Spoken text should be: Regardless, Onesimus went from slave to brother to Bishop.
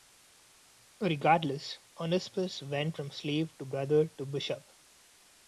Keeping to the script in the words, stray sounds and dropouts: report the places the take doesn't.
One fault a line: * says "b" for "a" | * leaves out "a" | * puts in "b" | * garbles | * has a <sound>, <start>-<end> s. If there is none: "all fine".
all fine